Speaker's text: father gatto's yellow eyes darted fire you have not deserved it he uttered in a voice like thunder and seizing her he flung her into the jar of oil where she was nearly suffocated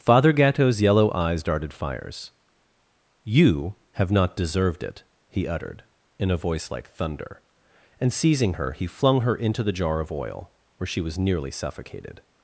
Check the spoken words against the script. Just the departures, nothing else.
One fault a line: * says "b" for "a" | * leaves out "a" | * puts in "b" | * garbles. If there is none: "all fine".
* says "fires" for "fire"